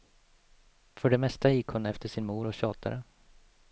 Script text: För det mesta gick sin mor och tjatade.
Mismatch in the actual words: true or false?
true